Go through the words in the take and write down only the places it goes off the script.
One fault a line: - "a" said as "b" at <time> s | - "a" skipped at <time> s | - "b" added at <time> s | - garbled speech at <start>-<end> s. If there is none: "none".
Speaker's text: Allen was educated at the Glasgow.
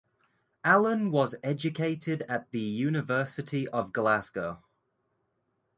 - "University of" added at 2.6 s